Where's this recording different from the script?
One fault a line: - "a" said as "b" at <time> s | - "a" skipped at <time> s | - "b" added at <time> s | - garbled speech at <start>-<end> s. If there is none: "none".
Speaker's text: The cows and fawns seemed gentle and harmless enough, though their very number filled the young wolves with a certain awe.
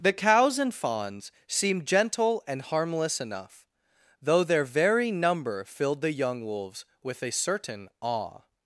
none